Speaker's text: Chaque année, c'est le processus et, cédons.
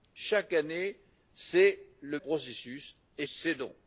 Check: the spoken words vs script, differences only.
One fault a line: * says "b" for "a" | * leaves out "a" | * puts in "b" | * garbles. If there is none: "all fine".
all fine